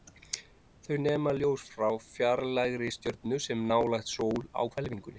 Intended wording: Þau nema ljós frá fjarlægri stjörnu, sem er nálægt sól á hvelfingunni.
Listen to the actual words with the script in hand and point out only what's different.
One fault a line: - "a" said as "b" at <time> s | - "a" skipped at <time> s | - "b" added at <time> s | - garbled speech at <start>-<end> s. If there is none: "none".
none